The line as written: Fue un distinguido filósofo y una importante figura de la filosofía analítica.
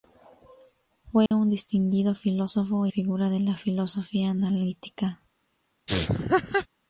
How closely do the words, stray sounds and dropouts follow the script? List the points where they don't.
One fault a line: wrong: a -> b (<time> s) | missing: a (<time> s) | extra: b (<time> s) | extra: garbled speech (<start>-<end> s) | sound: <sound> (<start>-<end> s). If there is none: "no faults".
sound: dropout (1.3-1.3 s)
missing: y una importante (2.9 s)
sound: laugh (5.9-6.7 s)